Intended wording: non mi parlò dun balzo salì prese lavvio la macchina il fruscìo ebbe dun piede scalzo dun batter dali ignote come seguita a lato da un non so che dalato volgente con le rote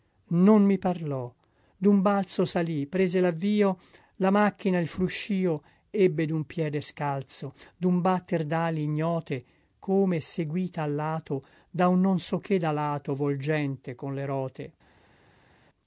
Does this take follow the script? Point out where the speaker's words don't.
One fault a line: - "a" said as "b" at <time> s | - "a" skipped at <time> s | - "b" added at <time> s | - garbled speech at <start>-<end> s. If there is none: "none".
none